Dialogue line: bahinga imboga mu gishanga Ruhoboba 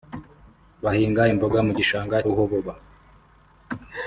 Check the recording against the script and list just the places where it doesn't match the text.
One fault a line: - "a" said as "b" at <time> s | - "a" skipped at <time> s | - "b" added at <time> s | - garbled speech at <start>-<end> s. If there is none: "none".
none